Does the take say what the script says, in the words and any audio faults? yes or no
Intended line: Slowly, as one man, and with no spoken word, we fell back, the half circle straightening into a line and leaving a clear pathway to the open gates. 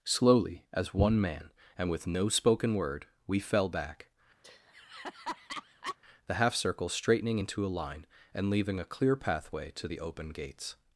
no